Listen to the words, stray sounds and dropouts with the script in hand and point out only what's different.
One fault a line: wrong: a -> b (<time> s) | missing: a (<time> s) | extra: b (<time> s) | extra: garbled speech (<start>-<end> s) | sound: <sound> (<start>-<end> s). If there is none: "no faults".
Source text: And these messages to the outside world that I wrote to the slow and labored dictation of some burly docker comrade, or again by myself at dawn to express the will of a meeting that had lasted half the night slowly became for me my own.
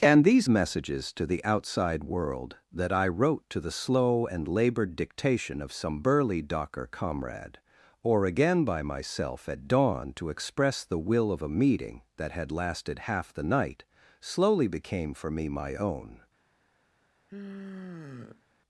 sound: sigh (17.3-18.4 s)